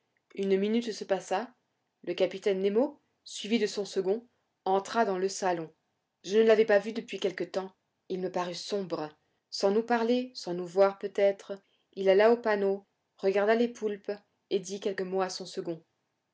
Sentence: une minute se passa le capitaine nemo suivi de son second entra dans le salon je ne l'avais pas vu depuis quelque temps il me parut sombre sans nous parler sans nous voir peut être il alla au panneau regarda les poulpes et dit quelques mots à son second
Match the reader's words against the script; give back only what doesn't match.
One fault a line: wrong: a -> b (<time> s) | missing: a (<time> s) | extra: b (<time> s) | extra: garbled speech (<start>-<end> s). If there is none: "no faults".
no faults